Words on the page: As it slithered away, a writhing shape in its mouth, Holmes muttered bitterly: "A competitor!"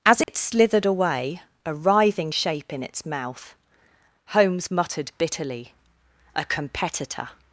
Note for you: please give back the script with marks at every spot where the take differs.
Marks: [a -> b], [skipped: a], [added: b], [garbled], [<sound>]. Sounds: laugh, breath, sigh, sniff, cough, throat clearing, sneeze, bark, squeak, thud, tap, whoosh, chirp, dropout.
As it [dropout] slithered away, a writhing shape in its mouth, Holmes muttered bitterly: "A competitor!"